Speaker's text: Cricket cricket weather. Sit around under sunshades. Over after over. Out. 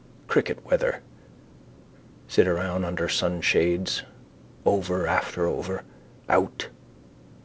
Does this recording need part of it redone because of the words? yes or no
yes